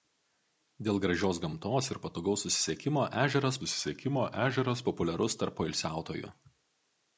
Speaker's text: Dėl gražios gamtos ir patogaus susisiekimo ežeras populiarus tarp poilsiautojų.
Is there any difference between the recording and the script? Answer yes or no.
yes